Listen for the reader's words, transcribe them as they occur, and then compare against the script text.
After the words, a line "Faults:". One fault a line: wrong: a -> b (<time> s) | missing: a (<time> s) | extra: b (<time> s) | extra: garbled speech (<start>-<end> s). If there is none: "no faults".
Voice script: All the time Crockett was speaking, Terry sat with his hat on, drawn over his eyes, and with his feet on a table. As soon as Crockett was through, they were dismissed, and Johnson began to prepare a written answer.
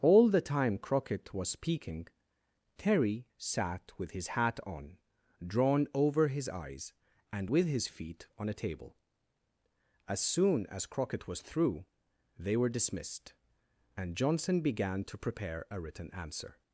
All the time Crockett was speaking, Terry sat with his hat on, drawn over his eyes, and with his feet on a table. As soon as Crockett was through, they were dismissed, and Johnson began to prepare a written answer.
Faults:
no faults